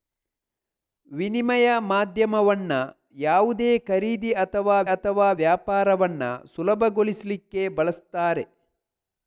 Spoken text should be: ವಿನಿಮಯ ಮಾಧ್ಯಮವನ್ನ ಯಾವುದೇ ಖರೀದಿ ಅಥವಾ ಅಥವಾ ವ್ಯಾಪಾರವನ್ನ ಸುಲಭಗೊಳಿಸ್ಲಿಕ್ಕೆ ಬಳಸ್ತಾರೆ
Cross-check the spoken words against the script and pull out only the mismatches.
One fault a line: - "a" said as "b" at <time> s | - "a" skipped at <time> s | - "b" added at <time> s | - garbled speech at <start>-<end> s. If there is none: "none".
none